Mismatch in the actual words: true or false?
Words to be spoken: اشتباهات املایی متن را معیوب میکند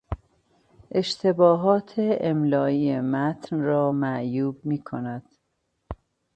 false